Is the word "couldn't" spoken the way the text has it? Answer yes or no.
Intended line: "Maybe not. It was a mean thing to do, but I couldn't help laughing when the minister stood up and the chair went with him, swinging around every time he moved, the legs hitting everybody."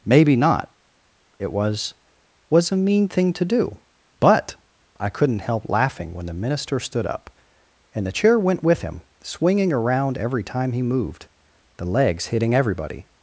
yes